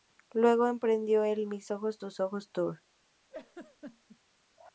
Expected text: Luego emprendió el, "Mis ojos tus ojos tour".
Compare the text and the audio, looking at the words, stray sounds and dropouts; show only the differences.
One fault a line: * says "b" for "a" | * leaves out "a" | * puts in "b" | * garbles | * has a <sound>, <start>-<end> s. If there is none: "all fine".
* has a laugh, 3.3-4.2 s